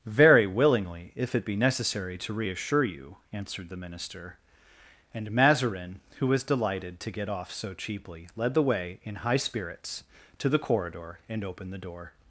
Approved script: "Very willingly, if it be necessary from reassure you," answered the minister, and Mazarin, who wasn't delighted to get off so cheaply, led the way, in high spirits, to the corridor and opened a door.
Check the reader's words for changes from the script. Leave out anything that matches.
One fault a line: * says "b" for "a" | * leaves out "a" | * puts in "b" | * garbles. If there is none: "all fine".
* says "to" for "from"
* says "was" for "wasn't"
* says "the" for "a"